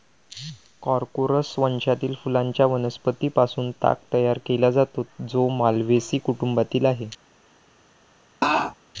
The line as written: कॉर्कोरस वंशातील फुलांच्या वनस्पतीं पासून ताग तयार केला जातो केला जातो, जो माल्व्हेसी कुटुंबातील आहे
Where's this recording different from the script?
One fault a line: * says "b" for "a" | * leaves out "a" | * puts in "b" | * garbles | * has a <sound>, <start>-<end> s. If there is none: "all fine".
* leaves out "केला जातो"
* has a laugh, 8.4-8.7 s